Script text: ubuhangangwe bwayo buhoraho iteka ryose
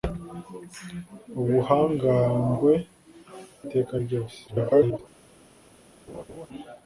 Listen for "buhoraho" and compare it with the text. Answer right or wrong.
wrong